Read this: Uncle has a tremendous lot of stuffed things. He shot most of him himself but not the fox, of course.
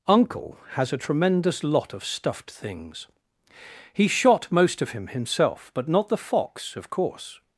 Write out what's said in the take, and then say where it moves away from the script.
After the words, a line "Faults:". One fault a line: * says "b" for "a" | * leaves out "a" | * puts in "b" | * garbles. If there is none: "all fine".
Uncle has a tremendous lot of stuffed things. He shot most of him himself but not the fox, of course.
Faults:
all fine